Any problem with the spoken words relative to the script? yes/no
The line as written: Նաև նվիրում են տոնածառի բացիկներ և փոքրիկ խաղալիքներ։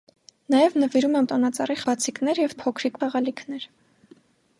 no